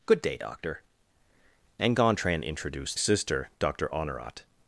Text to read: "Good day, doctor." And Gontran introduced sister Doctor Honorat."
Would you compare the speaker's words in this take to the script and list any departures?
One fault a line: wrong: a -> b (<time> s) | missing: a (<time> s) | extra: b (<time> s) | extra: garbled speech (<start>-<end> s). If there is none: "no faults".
no faults